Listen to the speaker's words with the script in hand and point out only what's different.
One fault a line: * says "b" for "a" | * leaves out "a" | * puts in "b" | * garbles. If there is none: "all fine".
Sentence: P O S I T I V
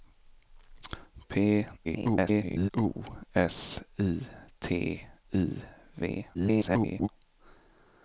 * garbles
* garbles